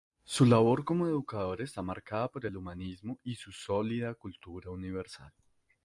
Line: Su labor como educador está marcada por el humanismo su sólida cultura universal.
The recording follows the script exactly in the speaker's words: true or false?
false